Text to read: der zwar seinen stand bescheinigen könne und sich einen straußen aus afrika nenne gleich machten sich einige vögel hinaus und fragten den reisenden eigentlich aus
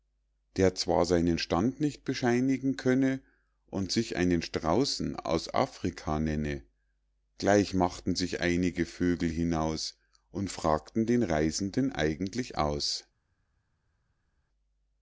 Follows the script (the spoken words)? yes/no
no